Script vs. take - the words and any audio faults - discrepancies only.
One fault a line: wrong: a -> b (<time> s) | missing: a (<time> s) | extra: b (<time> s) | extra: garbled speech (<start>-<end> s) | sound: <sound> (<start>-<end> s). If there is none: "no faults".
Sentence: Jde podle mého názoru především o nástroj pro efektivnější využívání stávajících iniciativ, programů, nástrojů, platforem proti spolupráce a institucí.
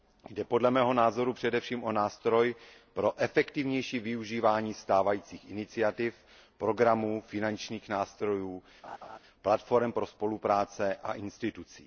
extra: finančních (7.3 s)
sound: laugh (8.8-9.2 s)
wrong: proti -> pro (9.9 s)